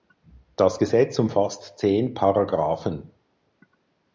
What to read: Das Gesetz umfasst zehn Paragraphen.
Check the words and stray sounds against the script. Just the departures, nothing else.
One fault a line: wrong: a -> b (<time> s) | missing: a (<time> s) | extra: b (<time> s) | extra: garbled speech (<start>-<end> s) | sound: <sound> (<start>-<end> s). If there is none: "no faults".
no faults